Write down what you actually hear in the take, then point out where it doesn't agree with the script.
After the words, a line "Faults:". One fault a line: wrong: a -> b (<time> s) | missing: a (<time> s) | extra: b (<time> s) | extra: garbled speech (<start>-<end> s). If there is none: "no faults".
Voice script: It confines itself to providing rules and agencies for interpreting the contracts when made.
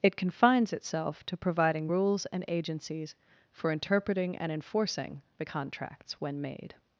It confines itself to providing rules and agencies for interpreting and enforcing the contracts when made.
Faults:
extra: and enforcing (4.4 s)